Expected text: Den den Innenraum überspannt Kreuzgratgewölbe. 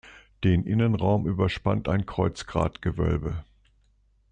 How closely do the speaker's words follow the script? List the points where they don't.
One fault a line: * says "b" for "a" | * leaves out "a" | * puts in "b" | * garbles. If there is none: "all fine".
* leaves out "den"
* puts in "ein"